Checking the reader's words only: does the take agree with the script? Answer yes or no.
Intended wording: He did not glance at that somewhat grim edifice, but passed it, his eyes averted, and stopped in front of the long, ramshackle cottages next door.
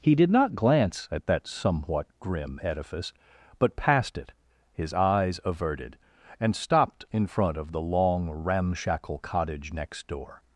no